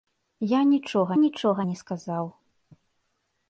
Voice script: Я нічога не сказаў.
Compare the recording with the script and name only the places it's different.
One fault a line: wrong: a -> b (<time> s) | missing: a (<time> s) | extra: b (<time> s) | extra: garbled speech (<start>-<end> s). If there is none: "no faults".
extra: нічога (1.2 s)